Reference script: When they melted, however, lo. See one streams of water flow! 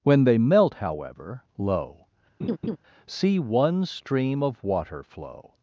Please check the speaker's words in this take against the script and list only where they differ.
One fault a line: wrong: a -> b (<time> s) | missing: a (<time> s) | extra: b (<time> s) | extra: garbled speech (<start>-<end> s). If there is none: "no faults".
wrong: melted -> melt (0.4 s)
wrong: streams -> stream (3.9 s)